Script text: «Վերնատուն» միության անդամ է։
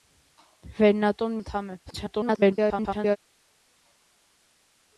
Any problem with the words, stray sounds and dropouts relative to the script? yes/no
yes